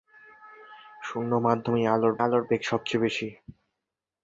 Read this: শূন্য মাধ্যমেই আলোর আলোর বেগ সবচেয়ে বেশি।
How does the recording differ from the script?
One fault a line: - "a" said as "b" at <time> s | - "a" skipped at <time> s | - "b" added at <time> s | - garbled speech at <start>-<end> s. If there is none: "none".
none